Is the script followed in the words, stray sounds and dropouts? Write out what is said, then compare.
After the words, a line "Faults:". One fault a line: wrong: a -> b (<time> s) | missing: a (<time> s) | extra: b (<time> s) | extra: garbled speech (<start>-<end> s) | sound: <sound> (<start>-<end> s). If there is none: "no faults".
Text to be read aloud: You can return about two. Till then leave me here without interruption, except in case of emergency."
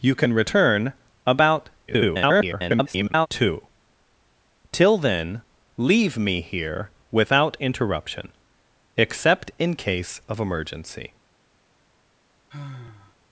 You can return about [garbled] two. Till then leave me here without interruption, except in case of emergency."
Faults:
extra: garbled speech (1.9-3.3 s)
sound: sigh (12.5-13.2 s)